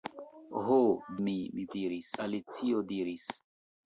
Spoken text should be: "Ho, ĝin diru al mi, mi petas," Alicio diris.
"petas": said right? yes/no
no